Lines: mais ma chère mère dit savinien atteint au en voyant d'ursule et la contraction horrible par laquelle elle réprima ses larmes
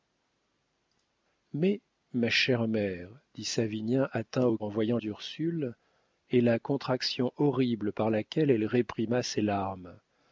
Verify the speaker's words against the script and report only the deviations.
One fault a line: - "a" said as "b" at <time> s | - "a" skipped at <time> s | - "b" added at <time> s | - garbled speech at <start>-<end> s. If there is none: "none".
none